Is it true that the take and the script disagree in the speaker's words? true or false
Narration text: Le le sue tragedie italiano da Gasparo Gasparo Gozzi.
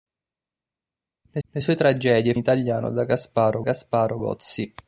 false